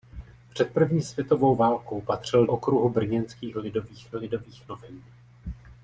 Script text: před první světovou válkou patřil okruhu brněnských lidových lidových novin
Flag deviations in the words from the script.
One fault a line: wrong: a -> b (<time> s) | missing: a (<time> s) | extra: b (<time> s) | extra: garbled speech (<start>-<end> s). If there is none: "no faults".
no faults